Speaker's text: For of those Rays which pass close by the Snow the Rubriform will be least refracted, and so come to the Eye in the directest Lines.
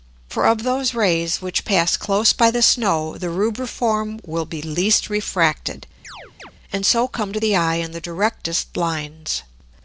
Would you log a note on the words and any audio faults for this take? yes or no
yes